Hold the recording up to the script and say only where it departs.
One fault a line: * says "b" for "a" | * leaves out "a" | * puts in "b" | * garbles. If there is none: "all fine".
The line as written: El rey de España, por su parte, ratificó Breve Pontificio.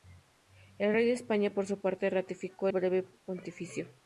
all fine